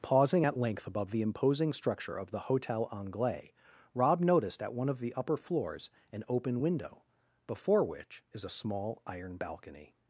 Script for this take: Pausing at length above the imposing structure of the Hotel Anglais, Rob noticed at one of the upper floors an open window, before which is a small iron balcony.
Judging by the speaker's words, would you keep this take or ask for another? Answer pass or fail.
pass